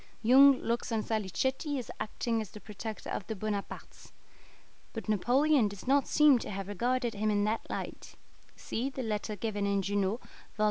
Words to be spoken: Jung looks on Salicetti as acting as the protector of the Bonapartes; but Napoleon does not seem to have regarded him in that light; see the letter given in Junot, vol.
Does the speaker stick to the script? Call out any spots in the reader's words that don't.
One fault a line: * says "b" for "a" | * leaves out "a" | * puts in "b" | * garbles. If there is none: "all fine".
all fine